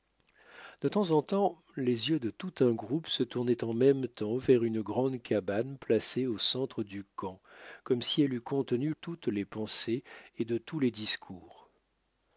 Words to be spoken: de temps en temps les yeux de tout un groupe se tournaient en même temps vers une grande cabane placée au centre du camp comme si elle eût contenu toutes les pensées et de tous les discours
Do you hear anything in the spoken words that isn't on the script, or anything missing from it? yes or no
no